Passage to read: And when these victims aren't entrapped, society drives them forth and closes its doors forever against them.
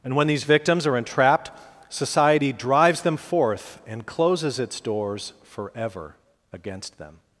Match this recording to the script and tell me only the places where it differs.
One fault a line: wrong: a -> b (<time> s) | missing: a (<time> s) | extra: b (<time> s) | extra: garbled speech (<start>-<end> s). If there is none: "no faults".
wrong: aren't -> are (0.8 s)